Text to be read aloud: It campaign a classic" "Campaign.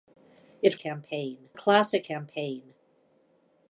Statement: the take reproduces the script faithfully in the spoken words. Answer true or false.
true